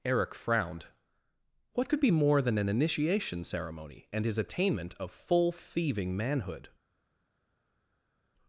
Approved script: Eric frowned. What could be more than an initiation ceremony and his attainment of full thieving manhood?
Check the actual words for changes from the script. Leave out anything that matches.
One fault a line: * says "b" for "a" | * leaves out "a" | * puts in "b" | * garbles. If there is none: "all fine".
all fine